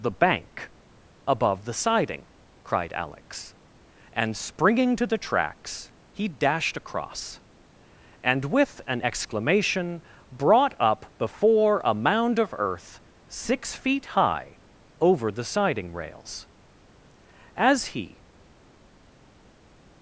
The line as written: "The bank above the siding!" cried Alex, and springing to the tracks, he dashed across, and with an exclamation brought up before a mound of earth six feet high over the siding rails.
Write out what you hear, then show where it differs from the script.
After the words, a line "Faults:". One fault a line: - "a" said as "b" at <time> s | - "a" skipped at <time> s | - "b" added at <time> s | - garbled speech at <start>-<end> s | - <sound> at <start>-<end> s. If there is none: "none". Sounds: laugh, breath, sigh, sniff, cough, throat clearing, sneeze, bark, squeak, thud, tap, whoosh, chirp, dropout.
"The bank above the siding!" cried Alex, and springing to the tracks, he dashed across, and with an exclamation brought up before a mound of earth six feet high over the siding rails. As he
Faults:
- "As he" added at 17.6 s